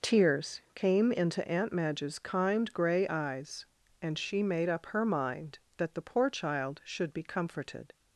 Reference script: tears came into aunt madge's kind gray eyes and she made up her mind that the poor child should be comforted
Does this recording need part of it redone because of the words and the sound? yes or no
no